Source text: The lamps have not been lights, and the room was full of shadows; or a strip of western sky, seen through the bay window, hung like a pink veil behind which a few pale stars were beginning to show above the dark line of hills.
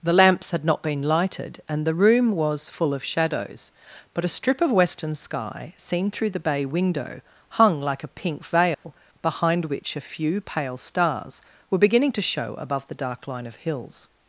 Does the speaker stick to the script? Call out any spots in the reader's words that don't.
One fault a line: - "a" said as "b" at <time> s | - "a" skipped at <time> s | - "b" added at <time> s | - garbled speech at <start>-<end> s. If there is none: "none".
- "have" said as "had" at 0.5 s
- "lights" said as "lighted" at 1.0 s
- "or" said as "but" at 4.1 s